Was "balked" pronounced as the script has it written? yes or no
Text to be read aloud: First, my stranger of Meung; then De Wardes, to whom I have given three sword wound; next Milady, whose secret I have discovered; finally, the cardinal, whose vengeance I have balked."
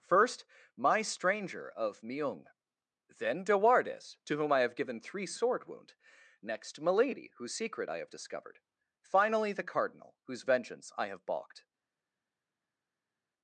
yes